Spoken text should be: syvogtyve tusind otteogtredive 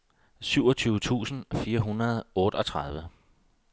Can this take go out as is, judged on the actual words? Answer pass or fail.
fail